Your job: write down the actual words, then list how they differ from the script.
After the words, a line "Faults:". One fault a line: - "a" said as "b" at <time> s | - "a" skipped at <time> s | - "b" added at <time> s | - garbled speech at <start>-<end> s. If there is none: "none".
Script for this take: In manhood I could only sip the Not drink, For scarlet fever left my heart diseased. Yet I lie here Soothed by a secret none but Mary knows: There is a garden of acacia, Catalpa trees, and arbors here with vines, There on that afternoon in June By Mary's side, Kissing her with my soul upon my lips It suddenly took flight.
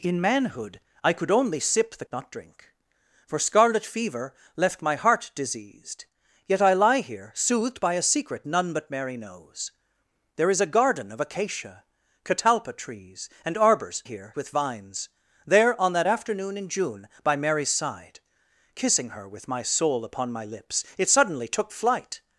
In manhood I could only sip the Not drink, For scarlet fever left my heart diseased. Yet I lie here Soothed by a secret none but Mary knows: There is a garden of acacia, Catalpa trees, and arbors here with vines, There on that afternoon in June By Mary's side, Kissing her with my soul upon my lips It suddenly took flight.
Faults:
none